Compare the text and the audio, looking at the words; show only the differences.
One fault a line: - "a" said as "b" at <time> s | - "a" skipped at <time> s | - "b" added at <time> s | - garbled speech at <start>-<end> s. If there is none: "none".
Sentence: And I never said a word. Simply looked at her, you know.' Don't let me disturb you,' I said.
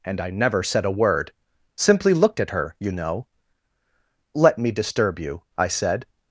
- "Don't" skipped at 3.3 s